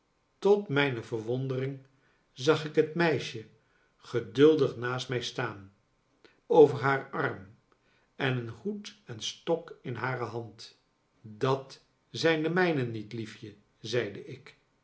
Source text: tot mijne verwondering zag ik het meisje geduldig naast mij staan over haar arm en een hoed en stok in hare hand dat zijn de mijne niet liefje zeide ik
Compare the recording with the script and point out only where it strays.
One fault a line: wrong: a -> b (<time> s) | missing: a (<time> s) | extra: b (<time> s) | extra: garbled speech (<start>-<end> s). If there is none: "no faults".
no faults